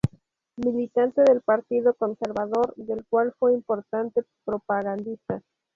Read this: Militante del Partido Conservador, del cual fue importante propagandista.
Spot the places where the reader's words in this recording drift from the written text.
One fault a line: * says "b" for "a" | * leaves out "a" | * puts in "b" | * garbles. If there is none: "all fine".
all fine